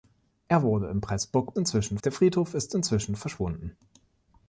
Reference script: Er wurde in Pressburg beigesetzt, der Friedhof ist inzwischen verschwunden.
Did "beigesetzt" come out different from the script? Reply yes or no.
yes